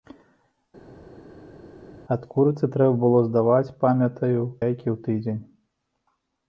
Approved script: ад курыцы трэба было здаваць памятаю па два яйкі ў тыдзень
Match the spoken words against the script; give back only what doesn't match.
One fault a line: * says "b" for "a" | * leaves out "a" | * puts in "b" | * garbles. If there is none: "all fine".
* leaves out "па два"